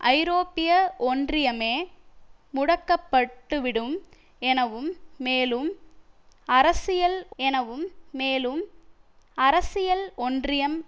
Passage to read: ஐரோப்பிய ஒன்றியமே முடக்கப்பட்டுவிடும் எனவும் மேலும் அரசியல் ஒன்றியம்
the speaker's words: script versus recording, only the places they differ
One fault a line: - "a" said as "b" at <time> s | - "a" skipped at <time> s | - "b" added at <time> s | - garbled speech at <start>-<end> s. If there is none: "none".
- "எனவும் மேலும் அரசியல்" added at 7.4 s